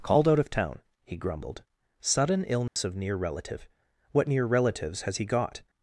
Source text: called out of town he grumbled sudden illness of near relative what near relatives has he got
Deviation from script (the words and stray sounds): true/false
true